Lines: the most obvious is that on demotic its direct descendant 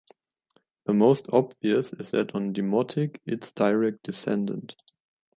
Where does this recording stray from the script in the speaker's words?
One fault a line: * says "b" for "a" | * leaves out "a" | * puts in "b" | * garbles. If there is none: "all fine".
all fine